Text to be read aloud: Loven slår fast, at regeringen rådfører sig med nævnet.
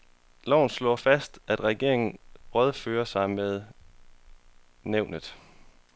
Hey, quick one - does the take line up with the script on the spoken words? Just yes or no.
yes